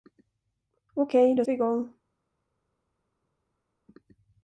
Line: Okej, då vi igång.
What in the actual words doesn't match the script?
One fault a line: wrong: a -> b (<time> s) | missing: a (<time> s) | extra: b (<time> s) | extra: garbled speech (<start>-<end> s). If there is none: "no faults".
no faults